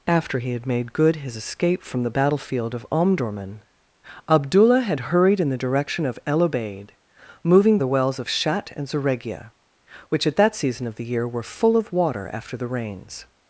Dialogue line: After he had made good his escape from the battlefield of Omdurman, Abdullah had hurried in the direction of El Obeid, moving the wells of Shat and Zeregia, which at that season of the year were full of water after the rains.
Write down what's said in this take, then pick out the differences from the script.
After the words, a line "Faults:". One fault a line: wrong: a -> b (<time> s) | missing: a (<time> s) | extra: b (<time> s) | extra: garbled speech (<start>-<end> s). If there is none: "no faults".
After he had made good his escape from the battlefield of Omdurman, Abdullah had hurried in the direction of El Obeid, moving the wells of Shat and Zeregia, which at that season of the year were full of water after the rains.
Faults:
no faults